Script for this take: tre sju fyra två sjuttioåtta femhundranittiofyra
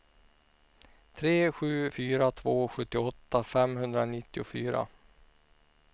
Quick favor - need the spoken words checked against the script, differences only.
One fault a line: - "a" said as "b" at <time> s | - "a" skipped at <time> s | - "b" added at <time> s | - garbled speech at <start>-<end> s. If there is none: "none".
none